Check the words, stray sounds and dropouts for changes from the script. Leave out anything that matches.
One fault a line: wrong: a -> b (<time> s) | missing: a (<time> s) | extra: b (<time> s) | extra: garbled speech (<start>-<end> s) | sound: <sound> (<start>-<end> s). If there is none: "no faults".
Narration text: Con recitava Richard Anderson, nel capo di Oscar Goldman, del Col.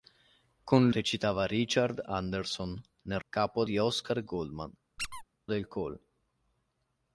sound: squeak (5.0-5.2 s)